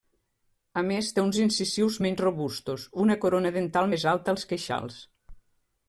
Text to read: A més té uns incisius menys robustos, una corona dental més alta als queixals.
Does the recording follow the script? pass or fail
pass